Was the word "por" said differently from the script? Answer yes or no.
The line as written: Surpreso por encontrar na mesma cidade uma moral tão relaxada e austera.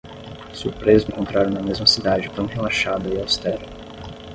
yes